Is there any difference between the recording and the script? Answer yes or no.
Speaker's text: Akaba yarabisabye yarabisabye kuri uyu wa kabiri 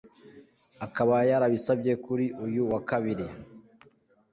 yes